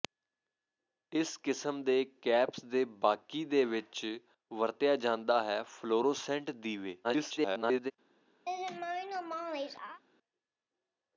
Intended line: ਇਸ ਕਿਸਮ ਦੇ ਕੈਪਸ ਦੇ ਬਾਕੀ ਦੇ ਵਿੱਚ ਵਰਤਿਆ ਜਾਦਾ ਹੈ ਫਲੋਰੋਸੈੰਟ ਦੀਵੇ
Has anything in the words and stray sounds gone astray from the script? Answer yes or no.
yes